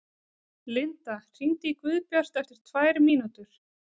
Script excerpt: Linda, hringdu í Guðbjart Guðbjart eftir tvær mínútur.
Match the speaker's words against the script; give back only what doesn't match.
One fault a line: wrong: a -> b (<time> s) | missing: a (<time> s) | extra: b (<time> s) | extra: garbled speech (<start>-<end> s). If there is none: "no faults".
missing: Guðbjart (2.4 s)